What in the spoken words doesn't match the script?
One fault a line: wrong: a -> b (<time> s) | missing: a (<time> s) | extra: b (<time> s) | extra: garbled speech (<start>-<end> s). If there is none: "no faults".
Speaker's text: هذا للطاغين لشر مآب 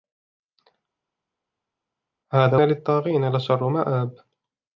no faults